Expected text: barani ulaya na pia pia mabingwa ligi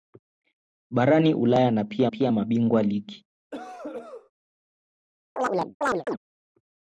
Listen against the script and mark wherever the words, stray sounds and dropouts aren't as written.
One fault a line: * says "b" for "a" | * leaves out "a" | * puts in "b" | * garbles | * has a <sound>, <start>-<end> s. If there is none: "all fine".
* has a cough, 3.5-4.3 s
* has a chirp, 5.4-6.2 s